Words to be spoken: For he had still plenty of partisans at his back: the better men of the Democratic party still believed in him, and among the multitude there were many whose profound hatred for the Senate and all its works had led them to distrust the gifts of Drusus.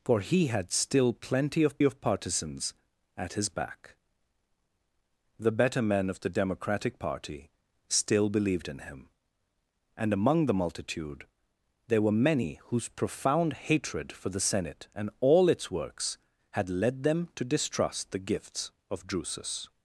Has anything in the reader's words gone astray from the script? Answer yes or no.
yes